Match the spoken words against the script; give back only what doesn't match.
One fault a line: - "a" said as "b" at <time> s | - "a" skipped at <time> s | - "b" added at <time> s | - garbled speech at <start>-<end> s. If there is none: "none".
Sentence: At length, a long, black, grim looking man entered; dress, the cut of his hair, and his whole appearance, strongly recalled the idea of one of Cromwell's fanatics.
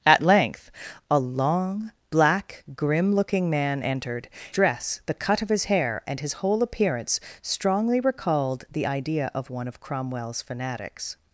none